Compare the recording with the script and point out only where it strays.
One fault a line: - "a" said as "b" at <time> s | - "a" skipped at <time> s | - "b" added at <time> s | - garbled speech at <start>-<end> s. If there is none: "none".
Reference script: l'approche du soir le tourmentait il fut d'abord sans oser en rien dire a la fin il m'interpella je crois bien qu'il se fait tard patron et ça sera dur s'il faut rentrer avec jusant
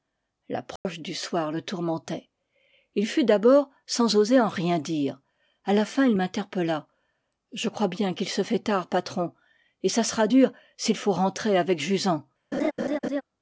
none